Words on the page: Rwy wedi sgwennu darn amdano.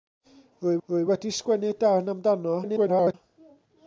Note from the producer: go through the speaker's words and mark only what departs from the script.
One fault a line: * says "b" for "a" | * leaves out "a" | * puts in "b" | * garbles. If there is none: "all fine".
* puts in "rwy"
* garbles